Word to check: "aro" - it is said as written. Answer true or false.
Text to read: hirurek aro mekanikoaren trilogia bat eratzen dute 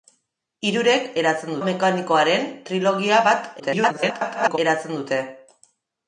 false